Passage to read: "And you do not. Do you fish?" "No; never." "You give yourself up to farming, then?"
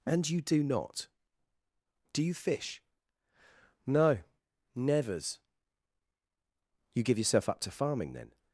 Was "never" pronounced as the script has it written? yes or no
no